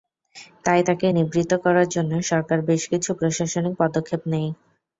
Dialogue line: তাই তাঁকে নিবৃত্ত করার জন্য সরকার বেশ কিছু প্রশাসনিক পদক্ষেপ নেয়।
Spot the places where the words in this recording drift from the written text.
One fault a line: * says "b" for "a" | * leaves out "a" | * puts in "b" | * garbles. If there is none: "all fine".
all fine